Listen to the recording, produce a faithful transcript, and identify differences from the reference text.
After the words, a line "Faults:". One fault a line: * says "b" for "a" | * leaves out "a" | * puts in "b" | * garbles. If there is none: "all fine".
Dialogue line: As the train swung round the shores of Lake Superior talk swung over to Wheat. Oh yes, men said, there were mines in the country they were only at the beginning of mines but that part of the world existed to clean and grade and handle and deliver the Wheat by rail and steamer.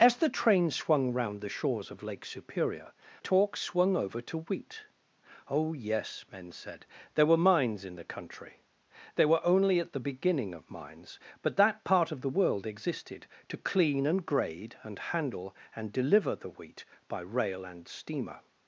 As the train swung round the shores of Lake Superior talk swung over to Wheat. Oh yes, men said, there were mines in the country they were only at the beginning of mines but that part of the world existed to clean and grade and handle and deliver the Wheat by rail and steamer.
Faults:
all fine